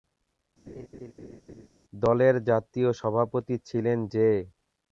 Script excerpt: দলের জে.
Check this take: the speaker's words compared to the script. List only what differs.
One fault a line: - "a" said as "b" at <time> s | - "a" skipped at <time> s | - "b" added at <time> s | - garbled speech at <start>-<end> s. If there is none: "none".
- "জাতীয় সভাপতি ছিলেন" added at 2.4 s